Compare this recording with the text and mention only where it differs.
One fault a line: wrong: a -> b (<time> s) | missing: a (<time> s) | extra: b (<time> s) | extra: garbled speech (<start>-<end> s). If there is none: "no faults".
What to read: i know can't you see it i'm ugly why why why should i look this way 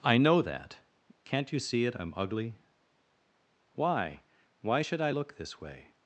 extra: that (0.4 s)
missing: why (4.8 s)